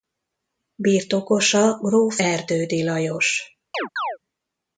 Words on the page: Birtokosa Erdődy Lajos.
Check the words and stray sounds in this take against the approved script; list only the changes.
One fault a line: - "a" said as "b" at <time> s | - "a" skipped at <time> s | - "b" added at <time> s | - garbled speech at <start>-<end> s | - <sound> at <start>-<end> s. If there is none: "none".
- "gróf" added at 1.8 s
- chirp at 3.7-4.2 s